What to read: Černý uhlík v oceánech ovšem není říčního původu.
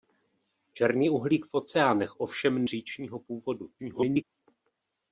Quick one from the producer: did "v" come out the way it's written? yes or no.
yes